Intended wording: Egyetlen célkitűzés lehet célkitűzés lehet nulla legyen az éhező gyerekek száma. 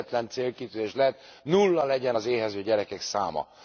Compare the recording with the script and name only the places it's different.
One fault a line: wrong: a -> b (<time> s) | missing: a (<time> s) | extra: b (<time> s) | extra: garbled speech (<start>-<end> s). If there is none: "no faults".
missing: célkitűzés lehet (1.2 s)